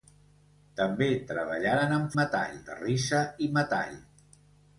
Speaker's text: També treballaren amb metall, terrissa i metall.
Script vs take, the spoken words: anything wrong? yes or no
no